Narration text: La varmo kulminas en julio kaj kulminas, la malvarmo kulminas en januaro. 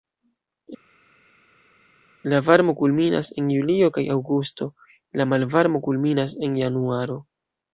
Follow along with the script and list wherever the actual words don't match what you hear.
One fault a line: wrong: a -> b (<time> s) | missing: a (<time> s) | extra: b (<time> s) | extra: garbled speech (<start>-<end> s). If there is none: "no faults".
wrong: kulminas -> aŭgusto (4.2 s)